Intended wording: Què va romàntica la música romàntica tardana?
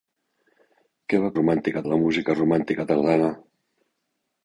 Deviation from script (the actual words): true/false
false